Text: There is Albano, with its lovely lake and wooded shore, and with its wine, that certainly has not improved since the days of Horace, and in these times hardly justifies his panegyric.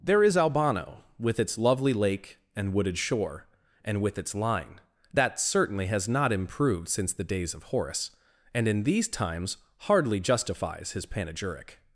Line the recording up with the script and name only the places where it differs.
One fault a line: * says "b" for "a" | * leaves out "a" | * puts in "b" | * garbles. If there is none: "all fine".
* says "line" for "wine"